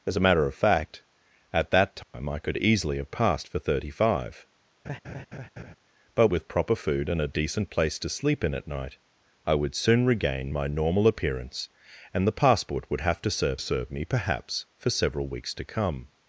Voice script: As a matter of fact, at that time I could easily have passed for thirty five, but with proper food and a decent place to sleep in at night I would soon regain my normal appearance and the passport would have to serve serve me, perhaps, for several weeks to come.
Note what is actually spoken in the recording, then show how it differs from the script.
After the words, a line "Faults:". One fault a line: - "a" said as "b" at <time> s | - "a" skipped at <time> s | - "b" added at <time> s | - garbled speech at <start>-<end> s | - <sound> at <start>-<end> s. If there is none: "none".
As a matter of fact, at that time I could easily have passed for thirty five, but with proper food and a decent place to sleep in at night I would soon regain my normal appearance and the passport would have to serve serve me, perhaps, for several weeks to come.
Faults:
- dropout at 2.0-2.1 s
- laugh at 4.8-5.8 s